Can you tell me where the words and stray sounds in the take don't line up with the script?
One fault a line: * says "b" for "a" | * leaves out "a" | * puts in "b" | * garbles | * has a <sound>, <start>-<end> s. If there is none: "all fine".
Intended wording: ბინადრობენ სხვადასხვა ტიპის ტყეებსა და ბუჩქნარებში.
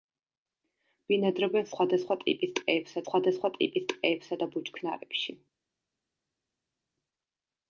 * puts in "სხვადასხვა ტიპის ტყეებსა"